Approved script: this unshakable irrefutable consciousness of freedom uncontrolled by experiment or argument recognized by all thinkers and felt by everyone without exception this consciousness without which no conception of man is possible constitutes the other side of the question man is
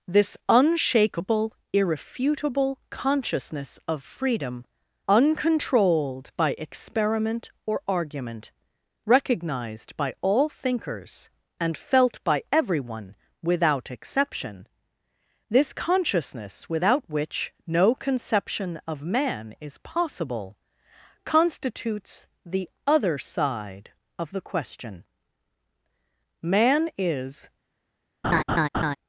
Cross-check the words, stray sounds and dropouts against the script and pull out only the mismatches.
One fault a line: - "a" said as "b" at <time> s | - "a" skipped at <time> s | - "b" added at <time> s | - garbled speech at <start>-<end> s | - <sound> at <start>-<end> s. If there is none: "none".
- laugh at 28.2-29.0 s